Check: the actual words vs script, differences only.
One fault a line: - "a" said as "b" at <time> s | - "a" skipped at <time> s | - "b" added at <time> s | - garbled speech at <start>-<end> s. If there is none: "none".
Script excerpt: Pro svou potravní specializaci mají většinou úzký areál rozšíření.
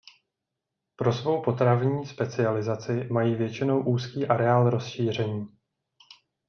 none